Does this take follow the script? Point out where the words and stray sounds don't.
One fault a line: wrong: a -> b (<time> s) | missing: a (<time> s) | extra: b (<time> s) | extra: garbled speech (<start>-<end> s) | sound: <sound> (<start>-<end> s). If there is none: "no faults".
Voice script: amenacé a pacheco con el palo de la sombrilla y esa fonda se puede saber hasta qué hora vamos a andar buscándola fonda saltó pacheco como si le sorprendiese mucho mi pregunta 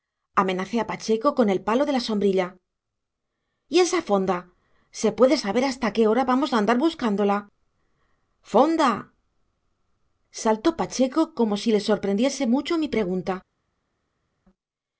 no faults